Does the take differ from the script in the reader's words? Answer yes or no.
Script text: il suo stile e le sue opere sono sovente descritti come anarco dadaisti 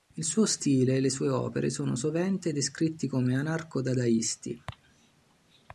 no